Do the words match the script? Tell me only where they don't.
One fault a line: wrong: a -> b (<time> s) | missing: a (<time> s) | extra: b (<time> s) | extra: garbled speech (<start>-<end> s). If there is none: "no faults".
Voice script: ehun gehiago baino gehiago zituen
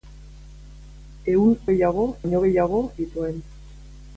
no faults